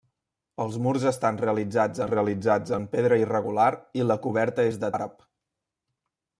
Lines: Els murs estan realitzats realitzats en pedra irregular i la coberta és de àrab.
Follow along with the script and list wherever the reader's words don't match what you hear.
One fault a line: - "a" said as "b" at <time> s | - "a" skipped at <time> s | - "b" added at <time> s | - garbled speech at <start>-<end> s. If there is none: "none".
none